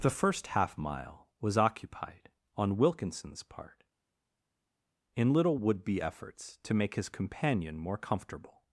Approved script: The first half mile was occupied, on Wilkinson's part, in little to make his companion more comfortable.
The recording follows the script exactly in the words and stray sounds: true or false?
false